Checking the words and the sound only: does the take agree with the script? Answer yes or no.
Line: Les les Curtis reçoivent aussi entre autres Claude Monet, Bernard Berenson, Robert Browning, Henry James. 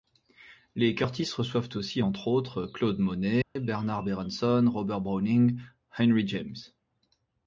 no